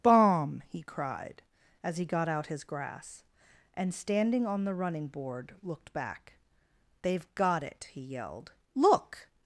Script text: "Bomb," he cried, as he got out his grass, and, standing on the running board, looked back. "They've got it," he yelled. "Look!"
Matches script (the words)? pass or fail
pass